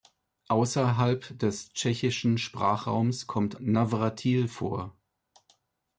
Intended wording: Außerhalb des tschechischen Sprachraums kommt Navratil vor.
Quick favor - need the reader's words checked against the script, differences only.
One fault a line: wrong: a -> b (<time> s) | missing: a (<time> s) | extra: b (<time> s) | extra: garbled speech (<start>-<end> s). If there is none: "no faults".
no faults